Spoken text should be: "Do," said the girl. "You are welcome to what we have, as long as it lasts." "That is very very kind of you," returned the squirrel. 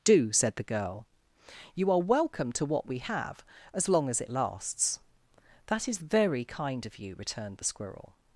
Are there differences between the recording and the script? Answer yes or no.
yes